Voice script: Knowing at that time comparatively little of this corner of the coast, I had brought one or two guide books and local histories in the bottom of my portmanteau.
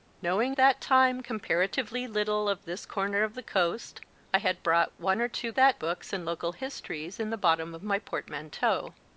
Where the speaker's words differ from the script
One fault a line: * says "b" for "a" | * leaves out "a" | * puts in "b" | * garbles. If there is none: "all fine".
* leaves out "at"
* says "that" for "guide"